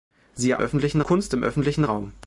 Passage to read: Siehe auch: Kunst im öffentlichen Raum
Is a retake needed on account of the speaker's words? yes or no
yes